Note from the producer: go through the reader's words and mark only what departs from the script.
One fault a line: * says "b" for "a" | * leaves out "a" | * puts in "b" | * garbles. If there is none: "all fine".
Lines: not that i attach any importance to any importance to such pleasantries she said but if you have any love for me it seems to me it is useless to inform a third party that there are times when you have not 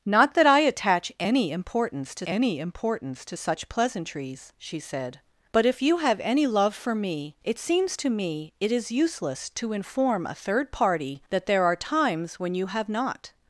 all fine